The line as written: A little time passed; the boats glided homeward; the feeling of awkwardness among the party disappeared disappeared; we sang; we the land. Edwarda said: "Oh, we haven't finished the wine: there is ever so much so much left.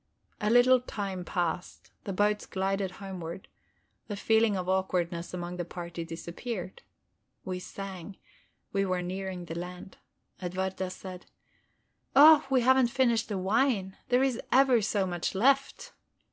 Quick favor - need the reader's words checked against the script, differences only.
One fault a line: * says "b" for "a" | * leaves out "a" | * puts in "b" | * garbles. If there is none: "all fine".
* leaves out "disappeared"
* puts in "were nearing"
* leaves out "so much"